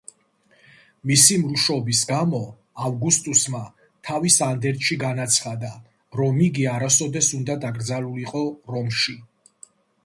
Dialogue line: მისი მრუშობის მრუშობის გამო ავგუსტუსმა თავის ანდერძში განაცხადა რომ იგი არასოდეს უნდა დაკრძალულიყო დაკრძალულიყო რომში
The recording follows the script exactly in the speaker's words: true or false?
false